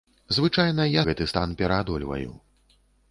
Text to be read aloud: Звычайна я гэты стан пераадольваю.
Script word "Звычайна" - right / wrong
right